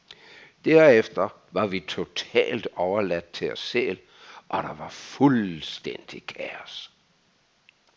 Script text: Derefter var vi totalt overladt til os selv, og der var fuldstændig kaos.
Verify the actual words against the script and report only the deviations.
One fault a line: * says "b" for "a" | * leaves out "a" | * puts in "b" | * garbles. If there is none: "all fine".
all fine